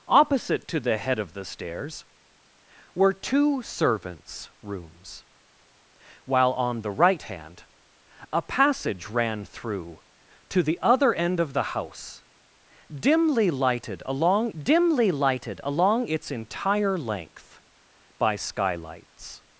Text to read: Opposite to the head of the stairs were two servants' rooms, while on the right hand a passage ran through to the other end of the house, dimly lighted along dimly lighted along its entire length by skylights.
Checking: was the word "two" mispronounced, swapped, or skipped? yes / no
no